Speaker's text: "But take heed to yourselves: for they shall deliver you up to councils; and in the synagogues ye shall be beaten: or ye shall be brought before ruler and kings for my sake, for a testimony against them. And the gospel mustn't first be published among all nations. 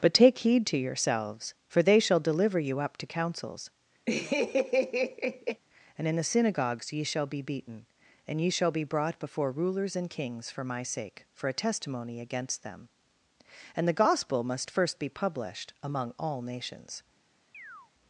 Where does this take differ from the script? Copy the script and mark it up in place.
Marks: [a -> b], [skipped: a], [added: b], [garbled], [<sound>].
"But take heed to yourselves: for they shall deliver you up to councils; [laugh] and in the synagogues ye shall be beaten: [or -> and] ye shall be brought before [ruler -> rulers] and kings for my sake, for a testimony against them. And the gospel [mustn't -> must] first be published among all nations. [chirp]